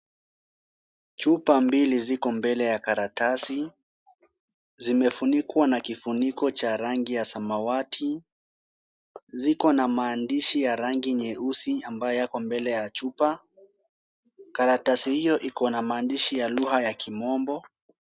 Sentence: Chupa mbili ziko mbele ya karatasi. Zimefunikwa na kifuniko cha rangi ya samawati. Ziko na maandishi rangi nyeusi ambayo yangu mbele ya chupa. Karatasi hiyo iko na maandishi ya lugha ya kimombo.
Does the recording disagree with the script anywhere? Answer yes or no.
yes